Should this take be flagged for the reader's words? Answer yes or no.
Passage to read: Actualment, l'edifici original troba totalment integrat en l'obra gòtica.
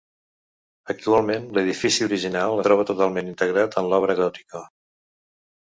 no